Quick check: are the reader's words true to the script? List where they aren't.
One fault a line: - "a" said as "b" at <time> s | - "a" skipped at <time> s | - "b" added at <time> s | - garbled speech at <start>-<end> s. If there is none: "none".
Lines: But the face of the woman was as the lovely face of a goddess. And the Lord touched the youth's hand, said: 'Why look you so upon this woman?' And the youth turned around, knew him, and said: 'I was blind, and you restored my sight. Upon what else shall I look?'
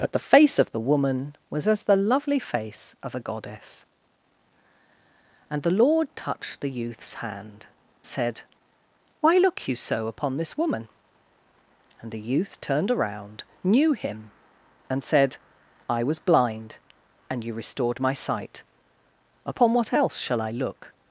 none